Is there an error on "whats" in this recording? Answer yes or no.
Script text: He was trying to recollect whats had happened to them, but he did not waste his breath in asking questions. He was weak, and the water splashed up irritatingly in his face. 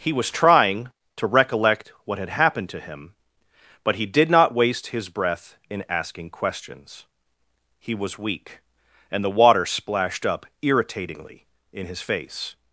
yes